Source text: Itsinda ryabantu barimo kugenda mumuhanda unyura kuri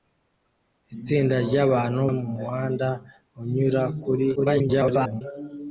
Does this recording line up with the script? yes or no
no